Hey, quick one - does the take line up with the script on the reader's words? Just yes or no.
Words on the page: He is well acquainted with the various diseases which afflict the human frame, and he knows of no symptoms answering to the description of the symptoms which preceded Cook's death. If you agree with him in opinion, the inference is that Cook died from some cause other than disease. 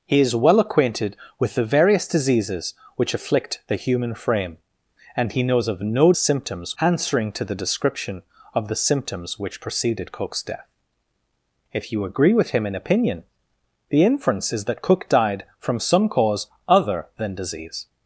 yes